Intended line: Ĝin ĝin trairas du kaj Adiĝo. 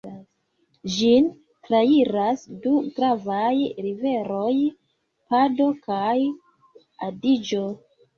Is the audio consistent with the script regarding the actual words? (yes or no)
no